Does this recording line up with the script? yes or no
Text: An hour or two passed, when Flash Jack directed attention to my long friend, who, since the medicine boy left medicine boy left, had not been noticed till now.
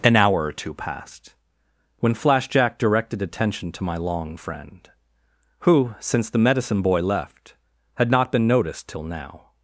no